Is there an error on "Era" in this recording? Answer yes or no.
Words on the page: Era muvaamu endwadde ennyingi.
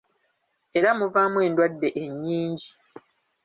no